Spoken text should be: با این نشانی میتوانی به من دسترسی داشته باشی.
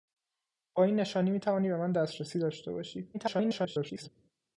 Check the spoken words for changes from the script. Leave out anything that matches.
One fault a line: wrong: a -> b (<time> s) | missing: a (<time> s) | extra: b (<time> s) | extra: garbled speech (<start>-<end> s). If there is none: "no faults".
extra: garbled speech (3.1-4.1 s)